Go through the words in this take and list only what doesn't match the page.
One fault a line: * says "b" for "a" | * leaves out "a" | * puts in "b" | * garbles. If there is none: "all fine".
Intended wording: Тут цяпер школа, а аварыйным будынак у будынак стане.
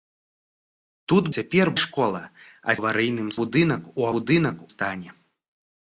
all fine